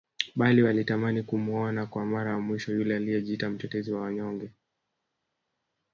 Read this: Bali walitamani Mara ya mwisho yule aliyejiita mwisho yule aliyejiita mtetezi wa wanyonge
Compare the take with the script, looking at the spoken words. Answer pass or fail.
fail